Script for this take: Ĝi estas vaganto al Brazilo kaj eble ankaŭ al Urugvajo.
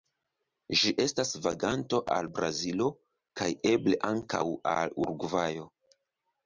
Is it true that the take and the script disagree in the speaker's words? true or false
false